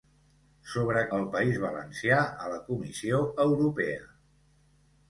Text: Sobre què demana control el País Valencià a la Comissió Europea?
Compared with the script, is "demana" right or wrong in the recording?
wrong